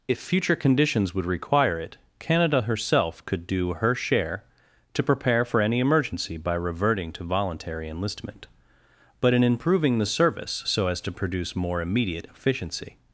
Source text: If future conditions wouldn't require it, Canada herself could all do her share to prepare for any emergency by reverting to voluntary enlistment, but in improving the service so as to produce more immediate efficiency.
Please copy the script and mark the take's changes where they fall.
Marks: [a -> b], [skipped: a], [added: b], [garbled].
If future conditions [wouldn't -> would] require it, Canada herself could [skipped: all] do her share to prepare for any emergency by reverting to voluntary enlistment, but in improving the service so as to produce more immediate efficiency.